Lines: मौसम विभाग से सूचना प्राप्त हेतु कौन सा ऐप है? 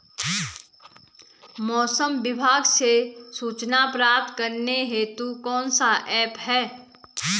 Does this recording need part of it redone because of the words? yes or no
yes